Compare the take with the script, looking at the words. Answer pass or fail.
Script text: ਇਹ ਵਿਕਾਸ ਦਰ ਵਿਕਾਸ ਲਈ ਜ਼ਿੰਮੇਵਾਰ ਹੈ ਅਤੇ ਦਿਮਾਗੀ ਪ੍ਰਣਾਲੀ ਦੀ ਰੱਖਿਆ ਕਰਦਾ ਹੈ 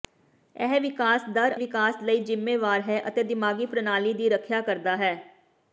pass